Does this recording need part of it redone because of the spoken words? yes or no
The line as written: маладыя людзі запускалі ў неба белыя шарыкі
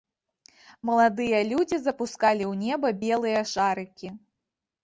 no